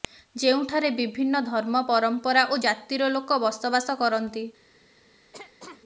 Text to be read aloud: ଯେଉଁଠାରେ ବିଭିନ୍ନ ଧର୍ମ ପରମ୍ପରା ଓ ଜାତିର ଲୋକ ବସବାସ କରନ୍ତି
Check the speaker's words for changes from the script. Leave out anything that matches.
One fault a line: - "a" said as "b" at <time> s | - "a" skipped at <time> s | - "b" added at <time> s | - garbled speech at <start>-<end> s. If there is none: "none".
none